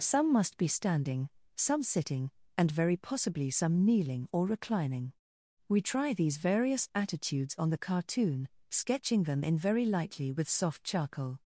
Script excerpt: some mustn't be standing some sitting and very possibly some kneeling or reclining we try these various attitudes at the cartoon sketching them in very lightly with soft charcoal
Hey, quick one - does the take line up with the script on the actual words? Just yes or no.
no